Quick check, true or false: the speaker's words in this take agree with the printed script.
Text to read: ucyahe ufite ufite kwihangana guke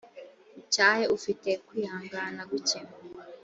false